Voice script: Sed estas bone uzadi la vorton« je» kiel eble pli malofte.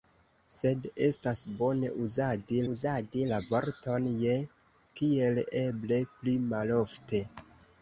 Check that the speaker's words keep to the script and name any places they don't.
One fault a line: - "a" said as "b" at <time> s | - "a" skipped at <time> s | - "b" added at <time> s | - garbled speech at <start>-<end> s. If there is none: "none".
- "uzadi" added at 2.7 s